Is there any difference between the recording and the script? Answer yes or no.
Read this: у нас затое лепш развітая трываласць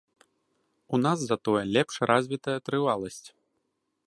no